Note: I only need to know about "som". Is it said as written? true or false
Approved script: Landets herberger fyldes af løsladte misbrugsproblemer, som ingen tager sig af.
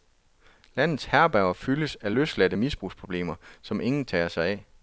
true